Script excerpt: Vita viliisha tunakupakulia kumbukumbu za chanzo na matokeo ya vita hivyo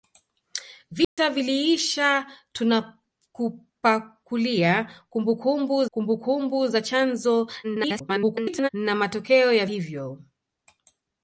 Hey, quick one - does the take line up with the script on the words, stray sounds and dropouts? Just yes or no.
no